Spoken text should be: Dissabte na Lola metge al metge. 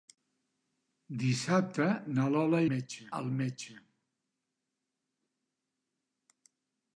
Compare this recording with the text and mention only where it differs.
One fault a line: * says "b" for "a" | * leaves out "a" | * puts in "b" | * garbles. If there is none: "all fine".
all fine